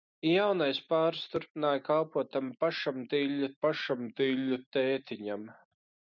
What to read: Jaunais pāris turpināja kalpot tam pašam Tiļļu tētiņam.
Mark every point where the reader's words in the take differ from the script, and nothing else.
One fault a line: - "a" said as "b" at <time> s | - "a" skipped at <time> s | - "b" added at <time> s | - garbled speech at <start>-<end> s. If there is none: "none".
- "pašam Tiļļu" added at 3.7 s